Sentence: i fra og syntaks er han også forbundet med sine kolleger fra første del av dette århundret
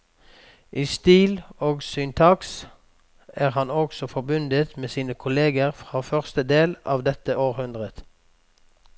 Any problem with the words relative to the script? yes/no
yes